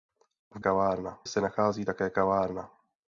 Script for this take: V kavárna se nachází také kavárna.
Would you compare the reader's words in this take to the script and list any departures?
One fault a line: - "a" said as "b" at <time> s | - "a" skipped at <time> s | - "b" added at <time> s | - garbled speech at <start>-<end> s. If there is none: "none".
none